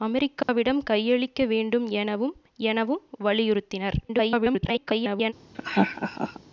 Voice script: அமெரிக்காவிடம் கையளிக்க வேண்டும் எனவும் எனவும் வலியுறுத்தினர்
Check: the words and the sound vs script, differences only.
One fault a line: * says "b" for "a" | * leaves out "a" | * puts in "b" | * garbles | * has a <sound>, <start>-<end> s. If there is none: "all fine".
* has a dropout, 0.4-0.5 s
* garbles
* has a laugh, 5.5-6.4 s